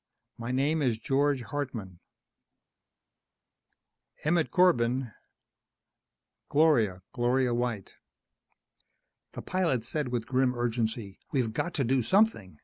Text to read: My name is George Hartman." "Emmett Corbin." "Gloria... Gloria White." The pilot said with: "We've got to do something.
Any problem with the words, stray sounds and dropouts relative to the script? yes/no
yes